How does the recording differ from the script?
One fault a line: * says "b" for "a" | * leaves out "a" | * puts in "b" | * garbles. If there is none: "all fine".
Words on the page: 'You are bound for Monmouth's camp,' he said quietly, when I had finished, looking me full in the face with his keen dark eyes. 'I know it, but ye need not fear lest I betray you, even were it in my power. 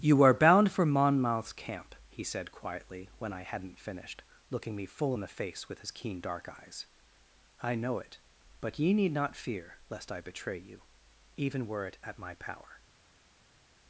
* says "hadn't" for "had"
* says "at" for "in"